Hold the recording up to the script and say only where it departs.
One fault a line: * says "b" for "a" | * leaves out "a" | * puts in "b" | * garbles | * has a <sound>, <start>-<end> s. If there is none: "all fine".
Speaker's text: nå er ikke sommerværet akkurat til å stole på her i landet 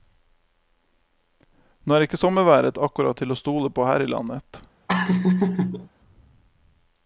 * has a laugh, 4.9-5.9 s